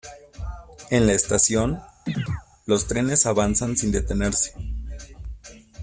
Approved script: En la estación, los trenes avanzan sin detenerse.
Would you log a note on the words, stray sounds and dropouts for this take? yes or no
yes